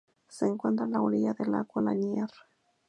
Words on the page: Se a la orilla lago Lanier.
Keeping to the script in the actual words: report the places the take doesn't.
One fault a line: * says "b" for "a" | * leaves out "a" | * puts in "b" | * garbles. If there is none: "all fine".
* puts in "encuentra"
* puts in "del"